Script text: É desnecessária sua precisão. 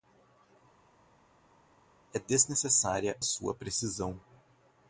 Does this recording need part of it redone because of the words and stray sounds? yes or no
no